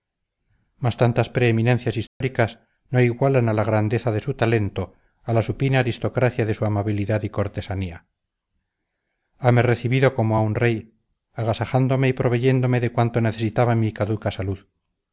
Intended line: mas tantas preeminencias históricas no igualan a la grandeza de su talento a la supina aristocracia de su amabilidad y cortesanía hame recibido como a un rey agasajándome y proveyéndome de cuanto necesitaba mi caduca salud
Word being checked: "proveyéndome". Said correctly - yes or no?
yes